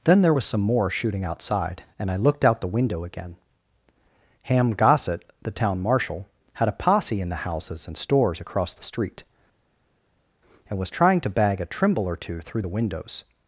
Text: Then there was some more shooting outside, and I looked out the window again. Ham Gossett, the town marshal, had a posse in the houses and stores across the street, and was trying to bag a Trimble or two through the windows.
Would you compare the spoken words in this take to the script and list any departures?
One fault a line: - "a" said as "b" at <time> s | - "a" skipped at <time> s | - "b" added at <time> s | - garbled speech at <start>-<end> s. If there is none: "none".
none